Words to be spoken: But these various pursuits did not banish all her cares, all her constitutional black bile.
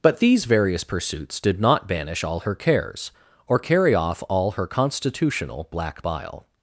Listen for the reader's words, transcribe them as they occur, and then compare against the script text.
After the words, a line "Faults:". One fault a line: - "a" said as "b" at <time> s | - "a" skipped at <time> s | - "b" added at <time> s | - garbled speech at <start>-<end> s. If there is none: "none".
But these various pursuits did not banish all her cares, or carry off all her constitutional black bile.
Faults:
- "or carry off" added at 3.5 s